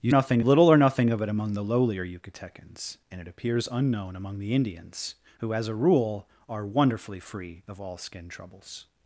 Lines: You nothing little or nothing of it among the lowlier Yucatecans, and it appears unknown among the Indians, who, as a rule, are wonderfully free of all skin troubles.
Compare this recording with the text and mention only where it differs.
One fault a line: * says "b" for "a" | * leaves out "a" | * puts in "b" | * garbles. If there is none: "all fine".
all fine